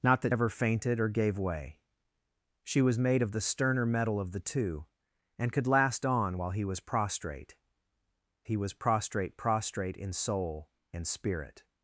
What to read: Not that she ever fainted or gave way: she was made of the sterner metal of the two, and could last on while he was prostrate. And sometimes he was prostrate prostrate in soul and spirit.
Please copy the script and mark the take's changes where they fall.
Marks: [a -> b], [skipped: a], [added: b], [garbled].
Not that [skipped: she] ever fainted or gave way: she was made of the sterner metal of the two, and could last on while he was prostrate. [skipped: And sometimes] he was prostrate prostrate in soul and spirit.